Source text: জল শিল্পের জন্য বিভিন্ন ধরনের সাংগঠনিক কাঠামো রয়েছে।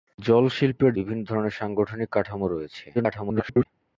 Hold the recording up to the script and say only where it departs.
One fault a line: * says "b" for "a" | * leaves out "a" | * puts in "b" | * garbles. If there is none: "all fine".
* leaves out "জন্য"
* garbles